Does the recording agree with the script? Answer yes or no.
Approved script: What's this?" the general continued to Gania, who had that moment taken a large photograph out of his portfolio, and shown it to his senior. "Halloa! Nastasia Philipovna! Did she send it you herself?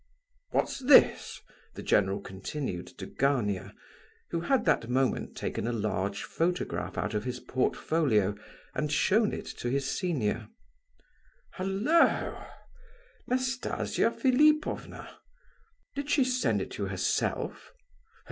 yes